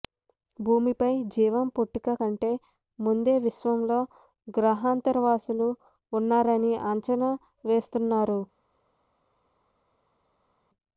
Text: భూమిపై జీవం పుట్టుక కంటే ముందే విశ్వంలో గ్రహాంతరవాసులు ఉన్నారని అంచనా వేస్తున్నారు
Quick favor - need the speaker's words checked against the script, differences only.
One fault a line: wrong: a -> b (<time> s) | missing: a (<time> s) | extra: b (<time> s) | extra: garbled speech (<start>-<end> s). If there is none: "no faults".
no faults